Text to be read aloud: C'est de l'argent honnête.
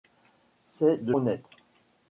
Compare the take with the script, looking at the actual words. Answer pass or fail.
fail